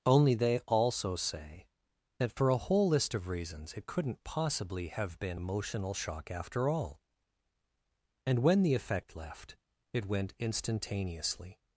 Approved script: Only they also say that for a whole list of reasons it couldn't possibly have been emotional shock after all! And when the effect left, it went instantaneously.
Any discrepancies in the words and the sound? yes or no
no